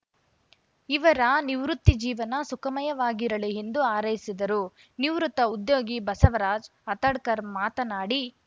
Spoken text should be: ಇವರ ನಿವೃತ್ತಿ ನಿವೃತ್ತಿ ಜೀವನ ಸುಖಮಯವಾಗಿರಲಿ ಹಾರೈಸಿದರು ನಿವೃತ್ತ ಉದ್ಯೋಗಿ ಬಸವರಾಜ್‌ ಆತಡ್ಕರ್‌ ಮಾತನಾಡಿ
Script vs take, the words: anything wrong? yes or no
yes